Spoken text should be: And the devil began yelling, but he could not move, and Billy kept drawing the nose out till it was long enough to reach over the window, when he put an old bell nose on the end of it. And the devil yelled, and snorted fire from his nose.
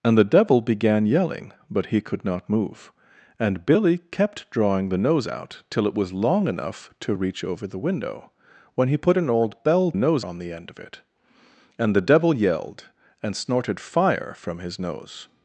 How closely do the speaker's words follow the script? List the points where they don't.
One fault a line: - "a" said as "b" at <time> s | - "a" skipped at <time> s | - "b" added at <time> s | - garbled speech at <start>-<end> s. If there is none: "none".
none